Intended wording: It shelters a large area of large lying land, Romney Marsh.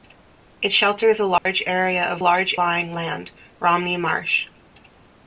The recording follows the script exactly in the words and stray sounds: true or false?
false